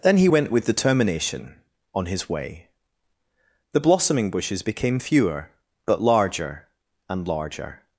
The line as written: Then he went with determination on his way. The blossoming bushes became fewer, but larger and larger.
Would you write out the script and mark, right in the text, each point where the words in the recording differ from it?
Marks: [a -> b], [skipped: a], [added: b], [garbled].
Then he went with determination on his way. The blossoming bushes became fewer, but larger and larger.